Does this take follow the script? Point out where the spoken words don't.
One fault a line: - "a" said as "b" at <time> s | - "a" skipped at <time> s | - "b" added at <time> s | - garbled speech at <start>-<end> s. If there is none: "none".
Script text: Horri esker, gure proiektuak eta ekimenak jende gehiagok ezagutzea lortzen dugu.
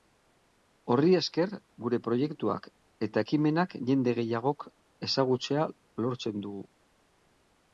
none